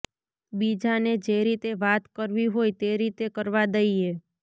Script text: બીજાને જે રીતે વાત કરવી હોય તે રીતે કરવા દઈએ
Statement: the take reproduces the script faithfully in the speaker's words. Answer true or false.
true